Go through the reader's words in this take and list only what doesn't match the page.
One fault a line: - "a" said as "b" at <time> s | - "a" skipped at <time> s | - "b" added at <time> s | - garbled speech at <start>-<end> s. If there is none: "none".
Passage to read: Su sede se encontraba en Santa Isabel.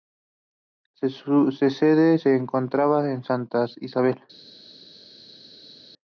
none